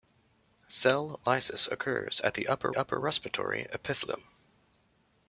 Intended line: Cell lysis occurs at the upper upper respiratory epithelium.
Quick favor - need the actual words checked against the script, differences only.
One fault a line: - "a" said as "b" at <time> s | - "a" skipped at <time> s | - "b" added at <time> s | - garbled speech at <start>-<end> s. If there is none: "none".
none